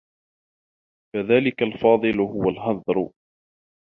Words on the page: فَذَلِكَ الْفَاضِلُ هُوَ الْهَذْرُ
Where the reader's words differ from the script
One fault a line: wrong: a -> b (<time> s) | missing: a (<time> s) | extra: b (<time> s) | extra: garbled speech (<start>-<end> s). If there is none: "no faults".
no faults